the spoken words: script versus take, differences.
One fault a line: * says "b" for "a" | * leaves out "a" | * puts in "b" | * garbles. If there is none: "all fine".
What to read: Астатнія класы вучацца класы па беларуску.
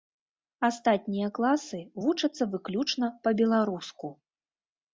* says "выключна" for "класы"